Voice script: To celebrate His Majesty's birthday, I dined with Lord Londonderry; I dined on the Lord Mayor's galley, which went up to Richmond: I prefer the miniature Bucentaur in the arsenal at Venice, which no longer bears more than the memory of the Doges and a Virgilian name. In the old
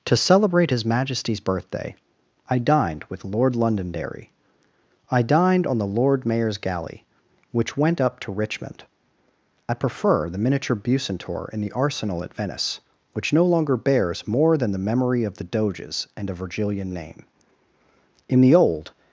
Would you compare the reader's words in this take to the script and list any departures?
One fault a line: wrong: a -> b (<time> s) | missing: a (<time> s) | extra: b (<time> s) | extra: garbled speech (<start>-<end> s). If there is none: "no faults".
no faults